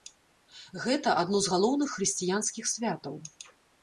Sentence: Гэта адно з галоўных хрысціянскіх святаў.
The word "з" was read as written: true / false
true